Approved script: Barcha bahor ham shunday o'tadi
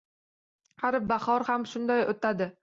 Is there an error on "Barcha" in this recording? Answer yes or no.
yes